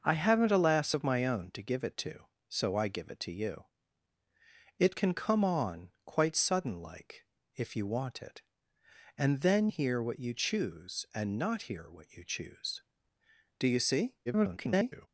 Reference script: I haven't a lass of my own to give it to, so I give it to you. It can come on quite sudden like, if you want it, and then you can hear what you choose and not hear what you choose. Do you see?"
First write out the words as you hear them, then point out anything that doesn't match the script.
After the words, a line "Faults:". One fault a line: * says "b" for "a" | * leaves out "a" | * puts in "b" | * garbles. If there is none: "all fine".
I haven't a lass of my own to give it to, so I give it to you. It can come on quite sudden like, if you want it, and then hear what you choose and not hear what you choose. Do you see?" [garbled]
Faults:
* leaves out "you can"
* garbles